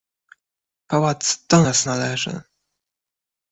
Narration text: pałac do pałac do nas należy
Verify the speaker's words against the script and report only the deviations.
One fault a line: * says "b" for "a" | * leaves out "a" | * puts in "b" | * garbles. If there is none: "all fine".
* leaves out "pałac do"